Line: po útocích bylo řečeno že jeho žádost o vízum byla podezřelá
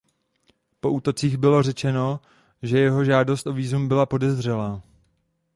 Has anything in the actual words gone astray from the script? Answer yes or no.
no